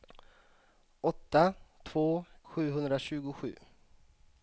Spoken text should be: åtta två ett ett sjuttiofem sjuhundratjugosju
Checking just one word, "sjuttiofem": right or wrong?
wrong